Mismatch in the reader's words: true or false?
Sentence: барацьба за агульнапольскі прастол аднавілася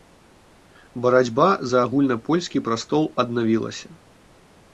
false